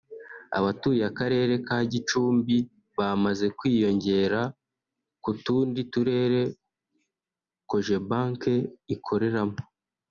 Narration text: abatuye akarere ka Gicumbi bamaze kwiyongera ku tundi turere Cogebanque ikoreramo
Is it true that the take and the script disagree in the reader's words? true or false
false